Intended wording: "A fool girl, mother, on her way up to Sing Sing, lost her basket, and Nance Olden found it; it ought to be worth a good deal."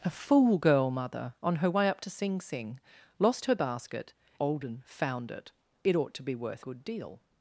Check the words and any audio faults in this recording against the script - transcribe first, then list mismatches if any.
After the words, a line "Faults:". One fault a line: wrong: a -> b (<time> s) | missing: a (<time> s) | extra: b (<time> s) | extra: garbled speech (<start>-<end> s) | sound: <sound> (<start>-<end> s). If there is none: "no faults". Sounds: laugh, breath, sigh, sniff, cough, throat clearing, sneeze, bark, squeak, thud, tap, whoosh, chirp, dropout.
"A fool girl, mother, on her way up to Sing Sing, lost her basket, Olden found it; it ought to be worth good deal."
Faults:
missing: and Nance (4.2 s)
missing: a (6.6 s)